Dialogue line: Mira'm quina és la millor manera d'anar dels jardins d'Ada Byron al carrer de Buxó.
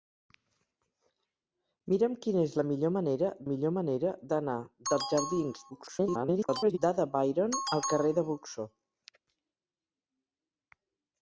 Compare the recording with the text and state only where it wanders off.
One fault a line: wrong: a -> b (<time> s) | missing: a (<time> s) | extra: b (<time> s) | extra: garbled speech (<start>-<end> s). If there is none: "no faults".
extra: millor manera (3.5 s)
extra: garbled speech (5.7-6.8 s)